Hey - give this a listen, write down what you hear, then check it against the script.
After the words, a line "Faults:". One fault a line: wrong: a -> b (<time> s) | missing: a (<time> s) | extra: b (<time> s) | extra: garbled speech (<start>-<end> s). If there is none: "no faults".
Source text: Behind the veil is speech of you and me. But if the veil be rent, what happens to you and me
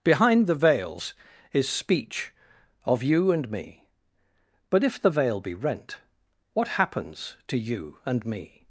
Behind the veils is speech of you and me. But if the veil be rent, what happens to you and me
Faults:
wrong: veil -> veils (0.6 s)